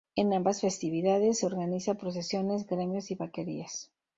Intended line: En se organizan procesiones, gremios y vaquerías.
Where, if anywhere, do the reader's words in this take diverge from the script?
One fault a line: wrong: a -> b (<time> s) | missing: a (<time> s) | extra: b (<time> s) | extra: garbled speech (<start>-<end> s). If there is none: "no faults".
extra: ambas festividades (0.3 s)